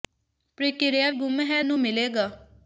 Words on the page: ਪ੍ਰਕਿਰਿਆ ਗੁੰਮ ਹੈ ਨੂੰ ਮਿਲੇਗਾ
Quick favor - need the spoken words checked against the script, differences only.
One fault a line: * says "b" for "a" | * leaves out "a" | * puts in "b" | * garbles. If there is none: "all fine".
all fine